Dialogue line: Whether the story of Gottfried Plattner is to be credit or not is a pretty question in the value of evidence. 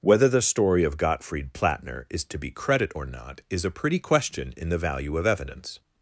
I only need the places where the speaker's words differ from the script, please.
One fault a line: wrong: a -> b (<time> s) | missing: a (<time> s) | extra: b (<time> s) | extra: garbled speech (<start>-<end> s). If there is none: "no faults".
no faults